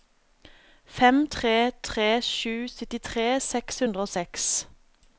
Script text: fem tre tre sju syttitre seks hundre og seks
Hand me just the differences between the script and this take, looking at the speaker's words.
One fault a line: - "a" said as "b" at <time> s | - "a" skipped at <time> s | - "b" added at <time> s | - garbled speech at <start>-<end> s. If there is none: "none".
none